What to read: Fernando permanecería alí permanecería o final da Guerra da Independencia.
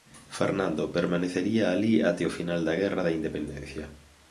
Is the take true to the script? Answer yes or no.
no